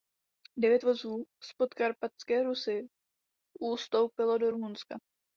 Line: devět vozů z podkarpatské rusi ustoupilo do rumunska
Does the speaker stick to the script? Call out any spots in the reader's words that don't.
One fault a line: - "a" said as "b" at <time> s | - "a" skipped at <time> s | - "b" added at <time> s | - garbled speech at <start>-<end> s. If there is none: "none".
none